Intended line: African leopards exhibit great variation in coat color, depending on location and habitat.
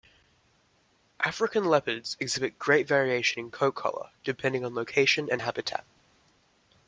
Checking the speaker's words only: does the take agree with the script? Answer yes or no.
yes